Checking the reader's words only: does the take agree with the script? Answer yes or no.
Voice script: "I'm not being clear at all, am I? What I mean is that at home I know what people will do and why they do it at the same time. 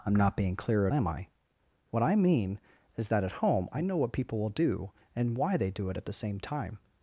no